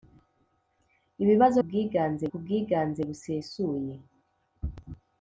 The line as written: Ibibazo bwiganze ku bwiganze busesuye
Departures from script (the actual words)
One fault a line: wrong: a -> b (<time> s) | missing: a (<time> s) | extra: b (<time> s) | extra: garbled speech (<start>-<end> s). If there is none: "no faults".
no faults